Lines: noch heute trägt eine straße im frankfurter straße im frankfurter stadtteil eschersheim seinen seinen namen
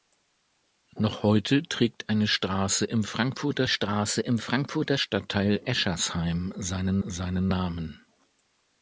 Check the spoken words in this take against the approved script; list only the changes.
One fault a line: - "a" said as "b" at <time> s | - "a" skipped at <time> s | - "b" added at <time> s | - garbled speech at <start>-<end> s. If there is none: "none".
none